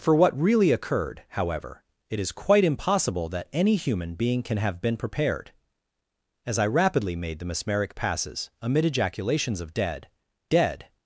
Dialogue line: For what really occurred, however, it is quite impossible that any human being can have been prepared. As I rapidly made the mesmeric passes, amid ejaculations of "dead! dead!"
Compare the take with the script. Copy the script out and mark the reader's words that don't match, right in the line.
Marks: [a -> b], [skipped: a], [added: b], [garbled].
For what really occurred, however, it is quite impossible that any human being can have been prepared. As I rapidly made the mesmeric passes, amid ejaculations of "dead! dead!"